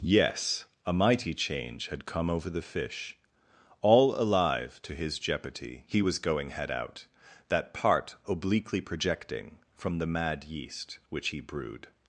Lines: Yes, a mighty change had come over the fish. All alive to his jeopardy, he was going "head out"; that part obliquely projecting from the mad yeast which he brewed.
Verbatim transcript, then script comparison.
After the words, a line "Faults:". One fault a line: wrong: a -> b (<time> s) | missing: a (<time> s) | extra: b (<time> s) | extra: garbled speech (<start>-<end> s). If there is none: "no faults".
Yes, a mighty change had come over the fish. All alive to his jeopardy, he was going "head out"; that part obliquely projecting from the mad yeast which he brewed.
Faults:
no faults